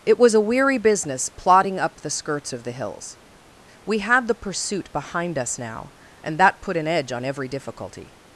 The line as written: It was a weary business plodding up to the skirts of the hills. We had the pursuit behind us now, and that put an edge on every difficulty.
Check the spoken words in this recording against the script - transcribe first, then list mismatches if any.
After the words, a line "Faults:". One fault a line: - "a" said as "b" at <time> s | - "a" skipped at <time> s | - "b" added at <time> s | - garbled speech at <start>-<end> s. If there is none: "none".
It was a weary business plodding up the skirts of the hills. We had the pursuit behind us now, and that put an edge on every difficulty.
Faults:
- "to" skipped at 2.0 s